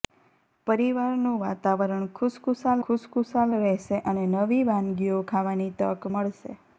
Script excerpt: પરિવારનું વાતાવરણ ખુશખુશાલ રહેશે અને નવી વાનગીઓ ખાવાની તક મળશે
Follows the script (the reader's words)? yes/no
no